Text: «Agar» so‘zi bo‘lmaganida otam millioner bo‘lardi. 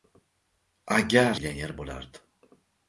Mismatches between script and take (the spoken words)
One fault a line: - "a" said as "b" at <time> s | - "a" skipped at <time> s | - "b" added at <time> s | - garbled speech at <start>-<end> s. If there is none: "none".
- "so‘zi bo‘lmaganida otam" skipped at 1.4 s